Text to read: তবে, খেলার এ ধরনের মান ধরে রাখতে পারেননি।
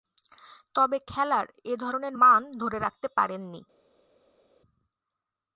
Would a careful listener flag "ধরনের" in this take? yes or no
no